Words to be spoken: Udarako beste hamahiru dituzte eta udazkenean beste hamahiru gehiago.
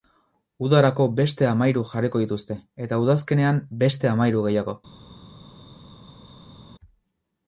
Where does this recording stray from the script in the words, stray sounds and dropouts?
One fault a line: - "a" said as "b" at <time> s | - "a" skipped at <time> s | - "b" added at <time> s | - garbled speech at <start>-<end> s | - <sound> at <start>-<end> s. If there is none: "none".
- "jarriko" added at 1.9 s